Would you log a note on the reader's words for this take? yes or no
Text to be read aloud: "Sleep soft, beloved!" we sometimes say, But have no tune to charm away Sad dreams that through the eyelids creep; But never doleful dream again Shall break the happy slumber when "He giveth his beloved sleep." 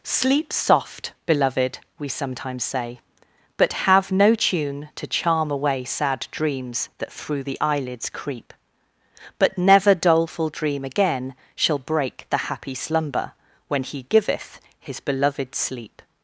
no